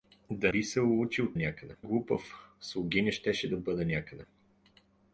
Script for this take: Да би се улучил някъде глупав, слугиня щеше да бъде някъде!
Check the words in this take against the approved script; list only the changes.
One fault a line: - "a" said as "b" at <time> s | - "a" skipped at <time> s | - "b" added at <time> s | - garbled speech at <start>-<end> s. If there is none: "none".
none